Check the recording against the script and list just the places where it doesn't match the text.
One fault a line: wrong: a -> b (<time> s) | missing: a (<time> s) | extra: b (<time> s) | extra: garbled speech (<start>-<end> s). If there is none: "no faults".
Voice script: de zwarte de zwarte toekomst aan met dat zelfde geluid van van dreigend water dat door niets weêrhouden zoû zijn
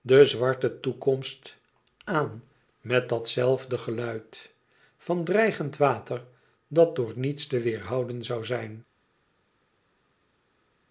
missing: de zwarte (0.8 s)
missing: van (5.2 s)
extra: te (7.5 s)